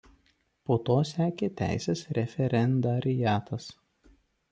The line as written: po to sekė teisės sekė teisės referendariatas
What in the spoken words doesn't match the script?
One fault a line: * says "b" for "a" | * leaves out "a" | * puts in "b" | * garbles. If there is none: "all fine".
* leaves out "sekė teisės"